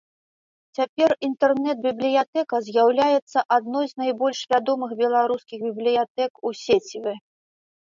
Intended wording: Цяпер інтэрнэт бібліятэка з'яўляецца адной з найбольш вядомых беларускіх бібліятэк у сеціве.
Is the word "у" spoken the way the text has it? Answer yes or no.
yes